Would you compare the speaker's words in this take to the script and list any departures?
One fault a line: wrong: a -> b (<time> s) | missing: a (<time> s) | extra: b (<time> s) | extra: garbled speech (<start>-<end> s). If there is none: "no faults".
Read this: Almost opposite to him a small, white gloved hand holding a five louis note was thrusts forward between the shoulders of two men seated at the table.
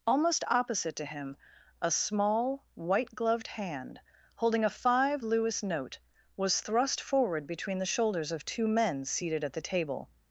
wrong: thrusts -> thrust (6.6 s)